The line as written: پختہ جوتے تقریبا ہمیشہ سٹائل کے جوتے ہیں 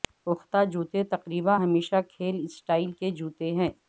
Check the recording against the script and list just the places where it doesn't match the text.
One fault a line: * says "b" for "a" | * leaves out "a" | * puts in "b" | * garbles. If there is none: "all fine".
* puts in "کھیل"